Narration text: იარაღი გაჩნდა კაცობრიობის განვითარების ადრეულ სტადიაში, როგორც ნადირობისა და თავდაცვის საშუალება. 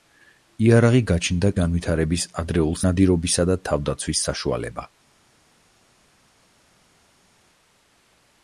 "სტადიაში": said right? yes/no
no